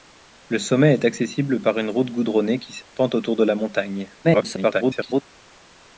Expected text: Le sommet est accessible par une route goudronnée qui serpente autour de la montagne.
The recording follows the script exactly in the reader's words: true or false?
false